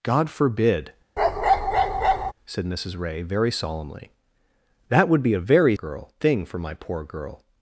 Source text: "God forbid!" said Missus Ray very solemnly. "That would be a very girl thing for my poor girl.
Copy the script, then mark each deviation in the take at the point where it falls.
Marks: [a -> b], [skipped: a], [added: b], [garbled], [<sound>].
"God forbid!" [bark] said Missus Ray very solemnly. "That would be a very girl thing for my poor girl.